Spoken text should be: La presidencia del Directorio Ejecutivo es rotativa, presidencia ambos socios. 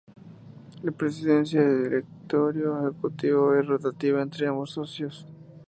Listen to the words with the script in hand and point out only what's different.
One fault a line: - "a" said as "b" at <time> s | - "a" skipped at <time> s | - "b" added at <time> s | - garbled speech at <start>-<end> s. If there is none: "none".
- "presidencia" said as "entre" at 4.2 s